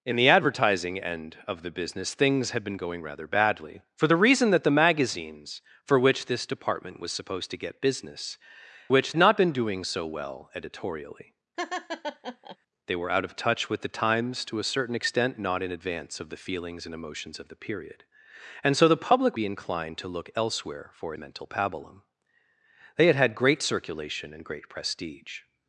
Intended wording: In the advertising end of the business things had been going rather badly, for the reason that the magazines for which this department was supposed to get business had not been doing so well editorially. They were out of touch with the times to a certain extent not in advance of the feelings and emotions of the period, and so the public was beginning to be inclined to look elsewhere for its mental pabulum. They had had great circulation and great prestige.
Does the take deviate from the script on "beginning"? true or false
true